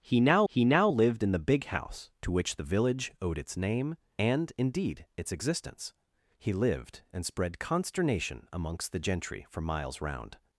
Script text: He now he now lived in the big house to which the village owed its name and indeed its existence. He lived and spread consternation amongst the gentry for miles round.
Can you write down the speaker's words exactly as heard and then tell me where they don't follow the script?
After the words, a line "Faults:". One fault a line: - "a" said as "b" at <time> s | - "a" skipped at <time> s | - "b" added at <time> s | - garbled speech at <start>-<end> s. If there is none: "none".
He now he now lived in the big house to which the village owed its name and indeed its existence. He lived and spread consternation amongst the gentry for miles round.
Faults:
none